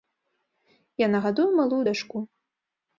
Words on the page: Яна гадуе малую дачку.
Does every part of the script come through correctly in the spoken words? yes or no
yes